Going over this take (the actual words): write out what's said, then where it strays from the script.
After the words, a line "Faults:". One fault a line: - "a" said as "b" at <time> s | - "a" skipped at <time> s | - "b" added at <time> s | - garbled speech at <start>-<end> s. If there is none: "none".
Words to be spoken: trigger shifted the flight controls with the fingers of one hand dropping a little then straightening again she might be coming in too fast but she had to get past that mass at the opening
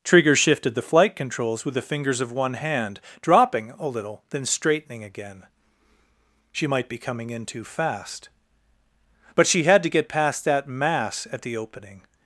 trigger shifted the flight controls with the fingers of one hand dropping a little then straightening again she might be coming in too fast but she had to get past that mass at the opening
Faults:
none